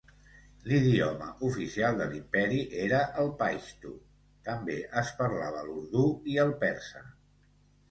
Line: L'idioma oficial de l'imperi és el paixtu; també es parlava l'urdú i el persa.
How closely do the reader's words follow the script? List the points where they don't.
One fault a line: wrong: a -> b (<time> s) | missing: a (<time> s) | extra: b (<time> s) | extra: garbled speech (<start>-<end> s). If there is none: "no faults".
wrong: és -> era (2.9 s)